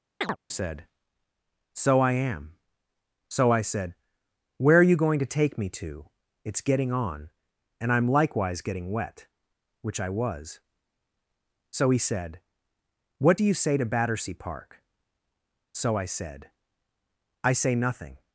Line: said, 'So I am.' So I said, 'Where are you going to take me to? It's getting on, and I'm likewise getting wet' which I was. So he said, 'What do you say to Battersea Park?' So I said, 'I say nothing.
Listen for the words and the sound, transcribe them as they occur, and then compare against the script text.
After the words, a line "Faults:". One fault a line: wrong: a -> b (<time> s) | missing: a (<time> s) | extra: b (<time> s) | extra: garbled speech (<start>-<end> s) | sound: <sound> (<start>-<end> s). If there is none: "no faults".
said, 'So I am.' So I said, 'Where are you going to take me to? It's getting on, and I'm likewise getting wet' which I was. So he said, 'What do you say to Battersea Park?' So I said, 'I say nothing.
Faults:
sound: chirp (0.2-0.4 s)